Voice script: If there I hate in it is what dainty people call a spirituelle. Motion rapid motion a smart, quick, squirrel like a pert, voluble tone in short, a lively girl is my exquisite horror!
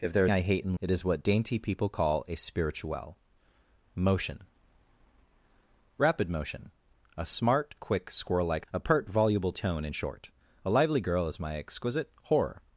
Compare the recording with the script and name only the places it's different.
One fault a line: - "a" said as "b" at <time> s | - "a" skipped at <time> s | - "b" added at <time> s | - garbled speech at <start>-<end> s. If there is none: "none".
none